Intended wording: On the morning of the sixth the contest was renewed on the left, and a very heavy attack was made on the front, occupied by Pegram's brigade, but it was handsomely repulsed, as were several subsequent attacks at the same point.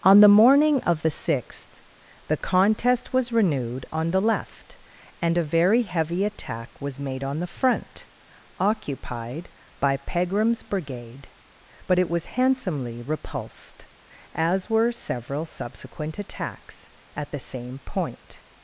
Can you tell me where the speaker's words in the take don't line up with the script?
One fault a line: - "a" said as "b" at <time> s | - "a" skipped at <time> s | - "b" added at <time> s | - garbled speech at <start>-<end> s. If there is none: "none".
none